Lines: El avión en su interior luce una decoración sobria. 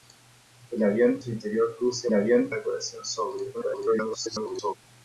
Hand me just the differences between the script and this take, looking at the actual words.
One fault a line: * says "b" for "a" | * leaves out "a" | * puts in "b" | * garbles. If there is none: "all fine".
* leaves out "en"
* says "avión" for "una"
* garbles